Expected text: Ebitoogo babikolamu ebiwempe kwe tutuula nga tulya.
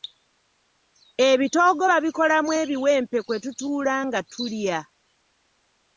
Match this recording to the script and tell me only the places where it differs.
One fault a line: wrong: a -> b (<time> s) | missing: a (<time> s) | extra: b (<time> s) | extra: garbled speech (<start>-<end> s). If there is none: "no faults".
no faults